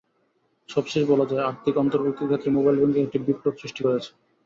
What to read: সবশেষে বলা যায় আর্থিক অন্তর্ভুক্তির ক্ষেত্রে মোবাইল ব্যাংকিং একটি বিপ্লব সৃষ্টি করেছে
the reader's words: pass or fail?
pass